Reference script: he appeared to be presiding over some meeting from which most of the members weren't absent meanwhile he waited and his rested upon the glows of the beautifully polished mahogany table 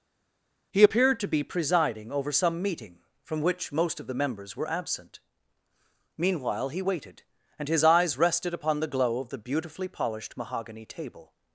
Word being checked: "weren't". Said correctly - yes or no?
no